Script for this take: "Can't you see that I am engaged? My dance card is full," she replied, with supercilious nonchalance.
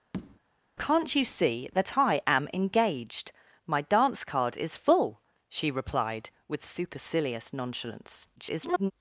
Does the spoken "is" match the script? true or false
true